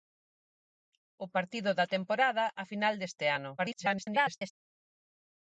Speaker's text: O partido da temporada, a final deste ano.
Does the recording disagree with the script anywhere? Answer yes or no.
yes